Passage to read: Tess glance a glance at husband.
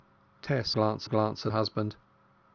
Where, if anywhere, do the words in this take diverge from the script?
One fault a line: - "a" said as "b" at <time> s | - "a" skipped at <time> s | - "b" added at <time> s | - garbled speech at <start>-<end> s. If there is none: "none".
none